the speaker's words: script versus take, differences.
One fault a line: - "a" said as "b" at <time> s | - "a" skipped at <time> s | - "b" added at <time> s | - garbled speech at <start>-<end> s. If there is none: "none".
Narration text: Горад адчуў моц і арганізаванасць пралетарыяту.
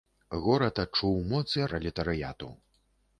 - "арганізаванасць" skipped at 1.6 s